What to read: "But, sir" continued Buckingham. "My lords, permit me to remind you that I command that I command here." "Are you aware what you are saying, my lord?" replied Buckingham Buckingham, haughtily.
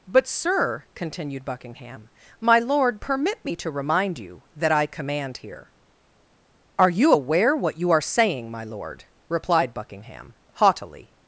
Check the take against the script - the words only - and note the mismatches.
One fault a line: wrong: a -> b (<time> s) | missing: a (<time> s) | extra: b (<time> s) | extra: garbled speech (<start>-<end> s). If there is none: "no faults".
wrong: lords -> lord (2.6 s)
missing: that I command (5.4 s)
missing: Buckingham (10.3 s)